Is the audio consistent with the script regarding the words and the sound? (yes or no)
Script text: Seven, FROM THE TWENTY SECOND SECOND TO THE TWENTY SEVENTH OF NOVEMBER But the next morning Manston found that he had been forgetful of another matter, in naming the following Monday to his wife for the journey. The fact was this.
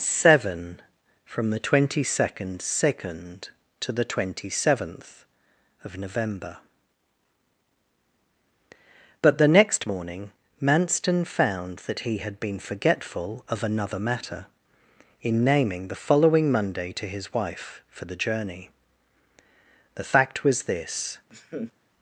no